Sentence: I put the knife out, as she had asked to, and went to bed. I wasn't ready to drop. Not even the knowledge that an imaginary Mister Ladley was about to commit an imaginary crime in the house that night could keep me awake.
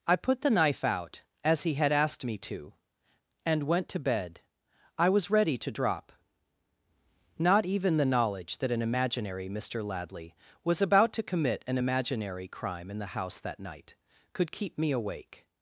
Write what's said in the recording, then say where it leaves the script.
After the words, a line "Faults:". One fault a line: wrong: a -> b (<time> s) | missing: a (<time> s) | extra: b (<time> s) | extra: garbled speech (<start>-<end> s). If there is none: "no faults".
I put the knife out, as he had asked me to, and went to bed. I was ready to drop. Not even the knowledge that an imaginary Mister Ladley was about to commit an imaginary crime in the house that night could keep me awake.
Faults:
wrong: she -> he (1.6 s)
extra: me (2.2 s)
wrong: wasn't -> was (5.1 s)